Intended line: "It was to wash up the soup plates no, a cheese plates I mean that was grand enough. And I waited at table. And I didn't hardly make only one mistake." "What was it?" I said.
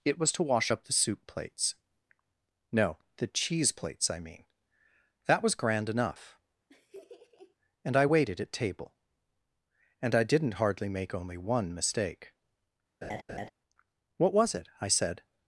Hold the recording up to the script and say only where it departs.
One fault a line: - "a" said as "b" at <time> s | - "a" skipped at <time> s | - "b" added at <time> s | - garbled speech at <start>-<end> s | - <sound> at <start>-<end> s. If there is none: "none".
- "a" said as "the" at 3.2 s
- laugh at 6.7-7.6 s
- laugh at 13.0-13.5 s